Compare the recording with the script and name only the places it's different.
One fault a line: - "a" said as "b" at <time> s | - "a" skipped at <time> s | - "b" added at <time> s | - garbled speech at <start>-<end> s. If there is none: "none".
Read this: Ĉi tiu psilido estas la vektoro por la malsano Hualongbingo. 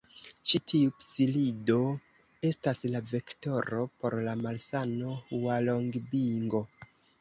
none